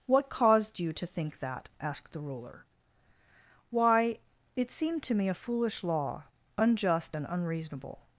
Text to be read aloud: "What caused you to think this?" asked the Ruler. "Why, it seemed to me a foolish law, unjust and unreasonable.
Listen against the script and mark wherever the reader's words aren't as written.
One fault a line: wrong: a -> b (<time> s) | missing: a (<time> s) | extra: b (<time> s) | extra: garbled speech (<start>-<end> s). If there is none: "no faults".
wrong: this -> that (1.4 s)